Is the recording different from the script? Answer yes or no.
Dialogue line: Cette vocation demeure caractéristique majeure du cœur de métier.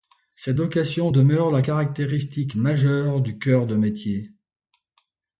yes